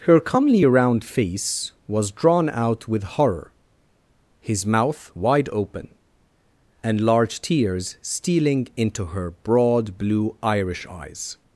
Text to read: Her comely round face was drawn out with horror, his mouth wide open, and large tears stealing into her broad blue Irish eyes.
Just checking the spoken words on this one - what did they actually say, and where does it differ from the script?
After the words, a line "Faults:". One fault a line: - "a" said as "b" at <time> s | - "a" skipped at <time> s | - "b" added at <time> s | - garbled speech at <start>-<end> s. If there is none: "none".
Her comely round face was drawn out with horror, his mouth wide open, and large tears stealing into her broad blue Irish eyes.
Faults:
none